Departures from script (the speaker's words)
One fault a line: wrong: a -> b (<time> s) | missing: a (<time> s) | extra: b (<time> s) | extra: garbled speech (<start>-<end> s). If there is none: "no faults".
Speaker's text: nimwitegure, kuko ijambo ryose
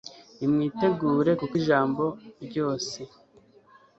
no faults